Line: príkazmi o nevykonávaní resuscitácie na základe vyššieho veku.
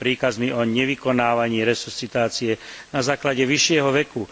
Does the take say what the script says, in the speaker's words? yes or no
yes